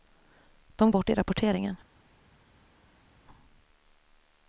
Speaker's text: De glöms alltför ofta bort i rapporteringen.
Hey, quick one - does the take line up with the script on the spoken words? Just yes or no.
no